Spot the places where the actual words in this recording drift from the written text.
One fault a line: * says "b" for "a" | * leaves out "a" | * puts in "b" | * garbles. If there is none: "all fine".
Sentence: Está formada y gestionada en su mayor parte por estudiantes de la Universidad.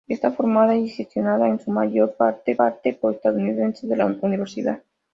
* puts in "parte"